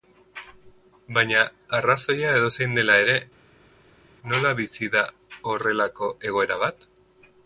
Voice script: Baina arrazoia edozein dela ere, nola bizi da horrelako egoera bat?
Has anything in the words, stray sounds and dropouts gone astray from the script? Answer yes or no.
no